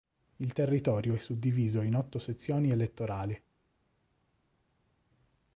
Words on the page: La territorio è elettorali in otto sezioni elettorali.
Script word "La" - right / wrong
wrong